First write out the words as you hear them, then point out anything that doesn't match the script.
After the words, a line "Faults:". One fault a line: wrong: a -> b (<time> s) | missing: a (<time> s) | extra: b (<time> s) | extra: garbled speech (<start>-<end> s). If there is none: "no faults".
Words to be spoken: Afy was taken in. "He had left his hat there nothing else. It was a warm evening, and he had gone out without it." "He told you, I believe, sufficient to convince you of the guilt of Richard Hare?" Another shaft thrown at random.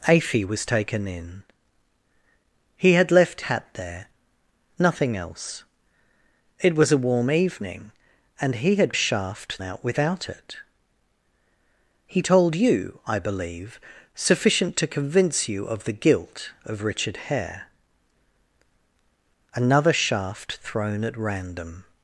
Afy was taken in. "He had left hat there nothing else. It was a warm evening, and he had shaft out without it." "He told you, I believe, sufficient to convince you of the guilt of Richard Hare?" Another shaft thrown at random.
Faults:
missing: his (3.4 s)
wrong: gone -> shaft (8.9 s)